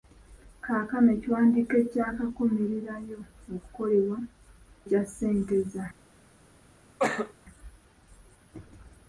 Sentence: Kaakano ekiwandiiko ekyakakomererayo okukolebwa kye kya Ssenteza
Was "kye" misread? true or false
true